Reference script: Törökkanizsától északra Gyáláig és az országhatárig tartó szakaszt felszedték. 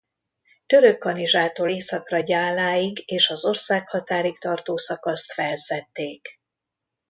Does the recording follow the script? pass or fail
pass